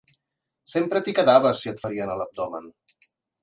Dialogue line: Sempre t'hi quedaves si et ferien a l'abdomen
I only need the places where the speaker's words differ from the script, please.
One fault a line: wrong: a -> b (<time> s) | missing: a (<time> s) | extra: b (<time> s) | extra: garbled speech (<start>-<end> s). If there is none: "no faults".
no faults